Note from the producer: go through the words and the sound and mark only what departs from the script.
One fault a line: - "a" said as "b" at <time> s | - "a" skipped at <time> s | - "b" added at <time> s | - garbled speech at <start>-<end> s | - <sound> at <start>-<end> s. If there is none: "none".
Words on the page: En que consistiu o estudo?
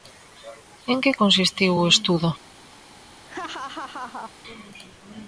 - laugh at 3.3-4.3 s